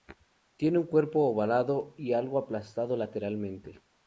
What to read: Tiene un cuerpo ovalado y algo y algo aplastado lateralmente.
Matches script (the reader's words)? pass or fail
fail